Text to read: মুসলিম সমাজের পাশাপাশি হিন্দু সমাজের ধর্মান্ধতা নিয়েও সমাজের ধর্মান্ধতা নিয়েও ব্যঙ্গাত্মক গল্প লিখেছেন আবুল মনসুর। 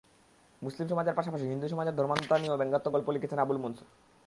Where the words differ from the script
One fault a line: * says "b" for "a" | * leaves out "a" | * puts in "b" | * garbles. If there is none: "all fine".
* leaves out "সমাজের ধর্মান্ধতা নিয়েও"